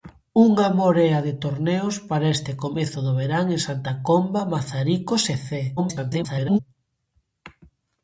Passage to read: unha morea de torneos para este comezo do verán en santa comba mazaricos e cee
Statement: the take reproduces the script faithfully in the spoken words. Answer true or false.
false